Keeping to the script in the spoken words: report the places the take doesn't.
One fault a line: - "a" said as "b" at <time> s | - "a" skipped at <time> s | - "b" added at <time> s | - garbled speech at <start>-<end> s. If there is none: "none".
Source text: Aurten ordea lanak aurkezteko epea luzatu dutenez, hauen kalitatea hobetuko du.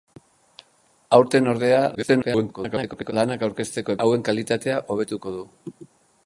- garbled speech at 1.9-3.1 s
- "epea luzatu dutenez" skipped at 4.0 s